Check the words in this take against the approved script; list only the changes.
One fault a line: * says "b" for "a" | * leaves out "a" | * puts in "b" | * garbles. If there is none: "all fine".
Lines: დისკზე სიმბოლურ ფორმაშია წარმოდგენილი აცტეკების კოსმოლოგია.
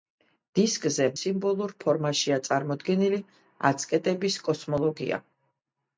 all fine